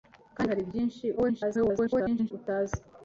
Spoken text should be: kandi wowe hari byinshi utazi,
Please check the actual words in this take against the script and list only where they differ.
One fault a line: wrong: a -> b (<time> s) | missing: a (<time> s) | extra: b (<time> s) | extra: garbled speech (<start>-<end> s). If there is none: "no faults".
missing: wowe (0.5 s)
extra: garbled speech (1.2-2.3 s)